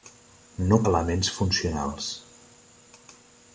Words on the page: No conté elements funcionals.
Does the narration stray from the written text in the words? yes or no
yes